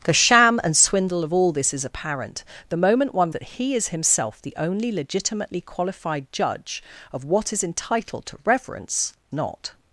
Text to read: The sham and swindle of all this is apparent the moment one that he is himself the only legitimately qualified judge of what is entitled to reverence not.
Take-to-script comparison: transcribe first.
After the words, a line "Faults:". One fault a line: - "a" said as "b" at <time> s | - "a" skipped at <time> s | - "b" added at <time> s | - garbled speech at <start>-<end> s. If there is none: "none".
The sham and swindle of all this is apparent the moment one that he is himself the only legitimately qualified judge of what is entitled to reverence not.
Faults:
none